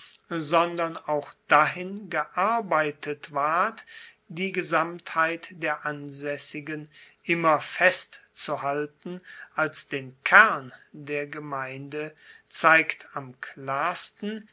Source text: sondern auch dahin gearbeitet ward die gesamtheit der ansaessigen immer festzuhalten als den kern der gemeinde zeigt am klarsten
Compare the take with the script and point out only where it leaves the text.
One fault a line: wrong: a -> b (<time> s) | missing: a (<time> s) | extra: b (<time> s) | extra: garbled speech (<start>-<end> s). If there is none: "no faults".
no faults